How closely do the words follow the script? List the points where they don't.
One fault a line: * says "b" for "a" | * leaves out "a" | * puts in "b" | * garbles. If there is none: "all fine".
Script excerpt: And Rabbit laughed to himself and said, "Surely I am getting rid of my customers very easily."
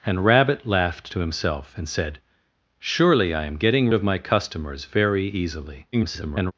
* leaves out "rid"
* garbles